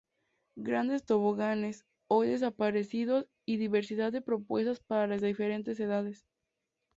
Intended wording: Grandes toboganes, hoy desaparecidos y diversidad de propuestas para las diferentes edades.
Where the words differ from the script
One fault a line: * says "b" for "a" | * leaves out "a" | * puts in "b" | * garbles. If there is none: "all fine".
all fine